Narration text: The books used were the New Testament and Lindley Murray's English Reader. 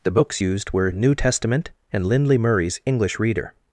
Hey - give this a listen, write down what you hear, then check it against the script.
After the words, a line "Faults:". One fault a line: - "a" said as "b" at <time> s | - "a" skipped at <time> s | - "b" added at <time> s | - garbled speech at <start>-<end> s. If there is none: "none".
The books used were New Testament and Lindley Murray's English Reader.
Faults:
- "the" skipped at 0.9 s